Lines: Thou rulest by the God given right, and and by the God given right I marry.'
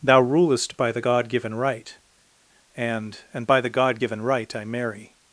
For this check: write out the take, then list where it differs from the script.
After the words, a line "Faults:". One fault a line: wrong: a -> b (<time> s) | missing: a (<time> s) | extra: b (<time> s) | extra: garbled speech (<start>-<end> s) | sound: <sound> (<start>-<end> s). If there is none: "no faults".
Thou rulest by the God given right, and and by the God given right I marry.'
Faults:
no faults